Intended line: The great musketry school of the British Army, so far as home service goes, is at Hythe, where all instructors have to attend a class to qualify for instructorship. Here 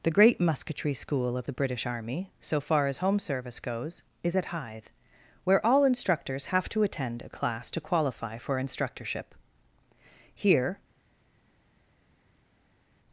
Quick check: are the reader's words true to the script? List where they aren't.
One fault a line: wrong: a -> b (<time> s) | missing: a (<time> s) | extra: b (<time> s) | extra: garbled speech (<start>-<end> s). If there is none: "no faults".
no faults